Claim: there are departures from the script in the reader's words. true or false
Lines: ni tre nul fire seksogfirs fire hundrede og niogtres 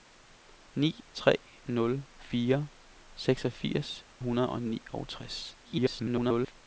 true